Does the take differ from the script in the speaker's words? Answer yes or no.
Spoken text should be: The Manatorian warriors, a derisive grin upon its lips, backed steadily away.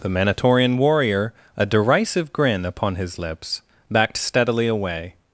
yes